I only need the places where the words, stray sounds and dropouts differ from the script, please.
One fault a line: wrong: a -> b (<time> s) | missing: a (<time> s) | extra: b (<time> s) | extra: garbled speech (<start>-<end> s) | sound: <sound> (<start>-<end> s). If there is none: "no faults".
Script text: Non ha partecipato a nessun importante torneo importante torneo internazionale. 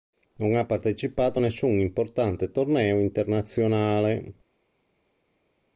missing: importante torneo (3.0 s)